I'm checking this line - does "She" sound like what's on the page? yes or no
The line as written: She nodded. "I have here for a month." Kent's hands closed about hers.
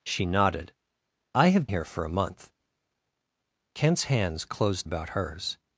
yes